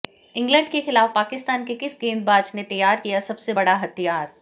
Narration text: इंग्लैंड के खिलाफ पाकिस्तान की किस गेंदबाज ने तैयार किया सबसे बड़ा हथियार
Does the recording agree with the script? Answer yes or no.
no